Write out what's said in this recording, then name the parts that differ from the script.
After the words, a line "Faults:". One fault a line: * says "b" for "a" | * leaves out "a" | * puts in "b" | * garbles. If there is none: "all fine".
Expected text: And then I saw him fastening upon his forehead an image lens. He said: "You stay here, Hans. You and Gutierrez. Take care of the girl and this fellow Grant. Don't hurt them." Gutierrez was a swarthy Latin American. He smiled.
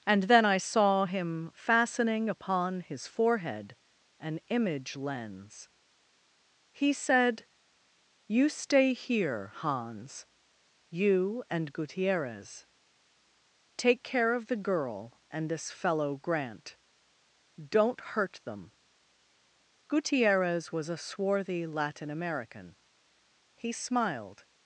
And then I saw him fastening upon his forehead an image lens. He said: "You stay here, Hans. You and Gutierrez. Take care of the girl and this fellow Grant. Don't hurt them." Gutierrez was a swarthy Latin American. He smiled.
Faults:
all fine